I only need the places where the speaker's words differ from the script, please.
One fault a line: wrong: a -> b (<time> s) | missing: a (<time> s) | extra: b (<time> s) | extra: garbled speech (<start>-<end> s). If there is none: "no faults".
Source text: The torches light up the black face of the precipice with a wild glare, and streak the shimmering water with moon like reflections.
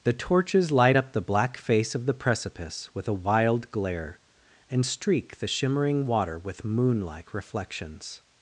no faults